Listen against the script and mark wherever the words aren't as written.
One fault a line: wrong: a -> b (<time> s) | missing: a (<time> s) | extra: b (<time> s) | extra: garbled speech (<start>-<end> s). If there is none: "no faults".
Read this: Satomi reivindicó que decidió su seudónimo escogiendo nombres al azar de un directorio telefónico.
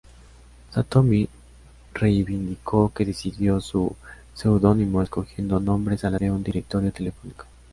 missing: azar (6.2 s)